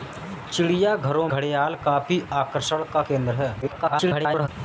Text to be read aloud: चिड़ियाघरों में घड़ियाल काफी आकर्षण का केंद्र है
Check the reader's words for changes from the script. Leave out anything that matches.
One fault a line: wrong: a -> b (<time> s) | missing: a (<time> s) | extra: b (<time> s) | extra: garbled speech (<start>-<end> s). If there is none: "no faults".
missing: में (1.3 s)
extra: garbled speech (3.6-4.5 s)